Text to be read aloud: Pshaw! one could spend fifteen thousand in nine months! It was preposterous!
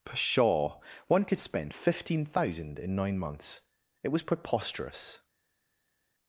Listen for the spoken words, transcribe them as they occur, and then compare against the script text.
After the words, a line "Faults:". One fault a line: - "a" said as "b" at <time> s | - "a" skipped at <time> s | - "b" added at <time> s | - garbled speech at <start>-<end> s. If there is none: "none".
Pshaw! one could spend fifteen thousand in nine months! It was preposterous!
Faults:
none